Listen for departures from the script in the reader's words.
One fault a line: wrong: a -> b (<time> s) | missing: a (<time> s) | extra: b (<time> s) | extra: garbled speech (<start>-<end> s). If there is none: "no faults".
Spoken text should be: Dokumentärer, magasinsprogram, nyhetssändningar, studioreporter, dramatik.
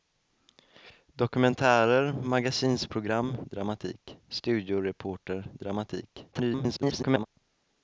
wrong: nyhetssändningar -> dramatik (3.4 s)
extra: garbled speech (6.3-7.3 s)